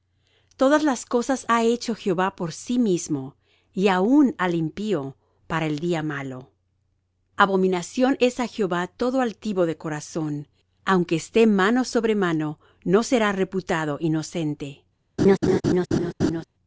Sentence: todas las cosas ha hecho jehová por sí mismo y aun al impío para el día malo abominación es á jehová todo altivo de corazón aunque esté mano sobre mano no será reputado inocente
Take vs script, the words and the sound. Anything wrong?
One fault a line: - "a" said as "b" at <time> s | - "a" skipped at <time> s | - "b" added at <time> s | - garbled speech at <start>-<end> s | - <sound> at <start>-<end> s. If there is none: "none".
- laugh at 15.2-16.4 s